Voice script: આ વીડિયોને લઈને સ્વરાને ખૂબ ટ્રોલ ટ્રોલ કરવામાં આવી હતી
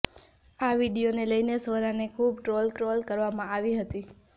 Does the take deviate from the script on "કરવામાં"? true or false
false